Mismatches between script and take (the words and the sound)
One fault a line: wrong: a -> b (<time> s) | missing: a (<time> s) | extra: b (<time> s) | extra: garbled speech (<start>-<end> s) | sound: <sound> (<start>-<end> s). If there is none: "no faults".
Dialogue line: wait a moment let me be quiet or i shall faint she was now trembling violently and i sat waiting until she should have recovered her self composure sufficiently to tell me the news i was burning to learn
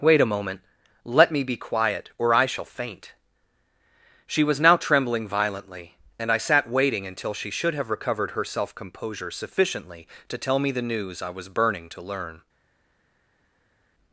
no faults